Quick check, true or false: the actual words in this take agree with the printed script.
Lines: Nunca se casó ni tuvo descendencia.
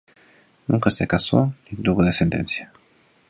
true